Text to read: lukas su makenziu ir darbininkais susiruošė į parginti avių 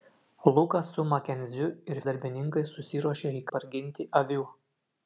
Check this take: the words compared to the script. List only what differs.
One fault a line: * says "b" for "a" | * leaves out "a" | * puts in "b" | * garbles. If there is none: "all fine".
all fine